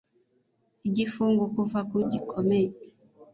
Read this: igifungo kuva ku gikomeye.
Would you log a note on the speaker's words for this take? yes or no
no